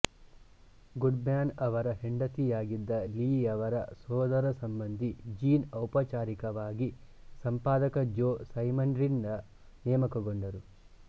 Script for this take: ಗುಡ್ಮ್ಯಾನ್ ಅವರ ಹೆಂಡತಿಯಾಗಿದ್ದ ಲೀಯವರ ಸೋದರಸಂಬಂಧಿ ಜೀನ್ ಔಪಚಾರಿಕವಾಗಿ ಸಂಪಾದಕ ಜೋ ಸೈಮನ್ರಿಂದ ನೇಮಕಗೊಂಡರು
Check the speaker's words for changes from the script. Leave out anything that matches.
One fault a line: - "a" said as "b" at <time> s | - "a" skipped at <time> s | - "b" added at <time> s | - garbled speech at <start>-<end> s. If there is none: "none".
none